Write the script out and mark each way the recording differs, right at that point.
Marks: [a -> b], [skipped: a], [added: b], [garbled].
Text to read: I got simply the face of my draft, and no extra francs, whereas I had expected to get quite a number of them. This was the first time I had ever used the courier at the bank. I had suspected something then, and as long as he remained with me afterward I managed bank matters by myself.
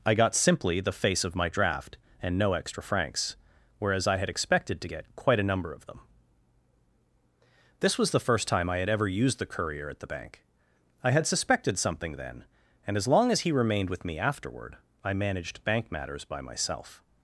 I got simply the face of my draft, and no extra francs, whereas I had expected to get quite a number of them. This was the first time I had ever used the courier at the bank. I had suspected something then, and as long as he remained with me afterward I managed bank matters by myself.